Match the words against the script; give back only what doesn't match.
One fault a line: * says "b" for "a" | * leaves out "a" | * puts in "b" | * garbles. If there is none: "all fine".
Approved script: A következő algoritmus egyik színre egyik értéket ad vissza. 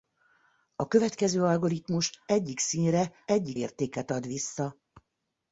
all fine